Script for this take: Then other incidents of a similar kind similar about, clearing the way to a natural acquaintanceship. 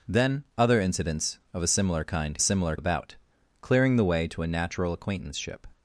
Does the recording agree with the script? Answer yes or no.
yes